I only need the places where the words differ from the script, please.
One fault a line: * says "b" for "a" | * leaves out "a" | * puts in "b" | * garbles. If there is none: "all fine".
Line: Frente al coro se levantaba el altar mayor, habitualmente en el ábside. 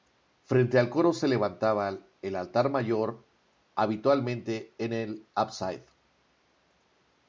all fine